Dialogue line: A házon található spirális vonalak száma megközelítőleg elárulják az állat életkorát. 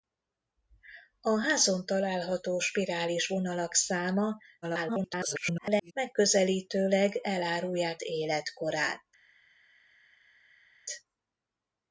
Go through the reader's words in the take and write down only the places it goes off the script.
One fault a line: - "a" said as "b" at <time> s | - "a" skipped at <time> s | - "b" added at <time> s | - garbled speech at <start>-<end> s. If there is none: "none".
- garbled speech at 4.6-5.9 s
- "az állat" skipped at 8.0 s